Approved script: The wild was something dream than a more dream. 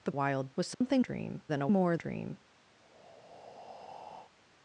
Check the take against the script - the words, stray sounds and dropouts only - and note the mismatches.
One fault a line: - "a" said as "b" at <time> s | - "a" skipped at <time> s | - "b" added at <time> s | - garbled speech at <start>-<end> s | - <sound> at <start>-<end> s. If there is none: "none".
- dropout at 0.7-0.8 s
- breath at 2.8-4.3 s